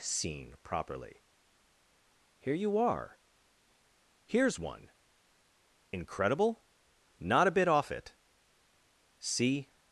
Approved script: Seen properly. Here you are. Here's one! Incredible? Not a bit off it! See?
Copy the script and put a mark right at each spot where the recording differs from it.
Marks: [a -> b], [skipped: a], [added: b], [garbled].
Seen properly. Here you are. Here's one! Incredible? Not a bit off it! See?